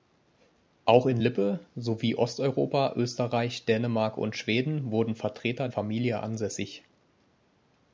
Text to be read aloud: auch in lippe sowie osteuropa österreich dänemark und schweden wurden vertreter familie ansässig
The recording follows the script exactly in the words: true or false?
true